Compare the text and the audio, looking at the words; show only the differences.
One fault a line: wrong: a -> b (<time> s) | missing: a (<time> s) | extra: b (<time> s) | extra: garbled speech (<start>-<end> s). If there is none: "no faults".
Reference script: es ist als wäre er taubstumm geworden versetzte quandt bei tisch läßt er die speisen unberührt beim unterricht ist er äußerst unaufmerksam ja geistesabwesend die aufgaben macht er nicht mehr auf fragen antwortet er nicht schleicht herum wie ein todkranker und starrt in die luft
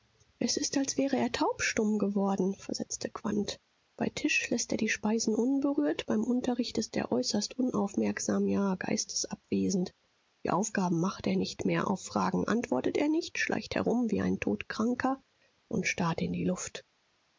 no faults